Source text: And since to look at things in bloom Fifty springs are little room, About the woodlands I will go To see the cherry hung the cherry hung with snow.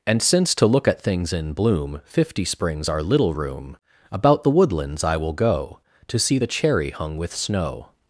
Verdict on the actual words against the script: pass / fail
fail